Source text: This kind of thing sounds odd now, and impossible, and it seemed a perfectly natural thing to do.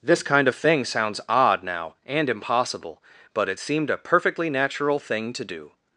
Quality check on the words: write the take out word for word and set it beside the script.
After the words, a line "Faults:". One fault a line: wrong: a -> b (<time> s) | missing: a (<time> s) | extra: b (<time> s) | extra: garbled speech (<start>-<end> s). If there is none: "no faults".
This kind of thing sounds odd now, and impossible, but it seemed a perfectly natural thing to do.
Faults:
wrong: and -> but (3.3 s)